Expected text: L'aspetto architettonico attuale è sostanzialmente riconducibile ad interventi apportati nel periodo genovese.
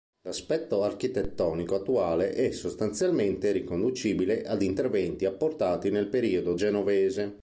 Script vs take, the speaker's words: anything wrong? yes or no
no